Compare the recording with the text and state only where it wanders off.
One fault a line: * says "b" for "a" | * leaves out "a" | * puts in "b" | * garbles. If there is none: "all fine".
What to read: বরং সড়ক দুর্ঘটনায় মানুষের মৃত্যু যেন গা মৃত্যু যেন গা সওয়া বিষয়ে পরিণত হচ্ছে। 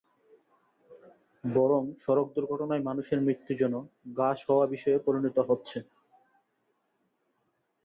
* leaves out "মৃত্যু যেন গা"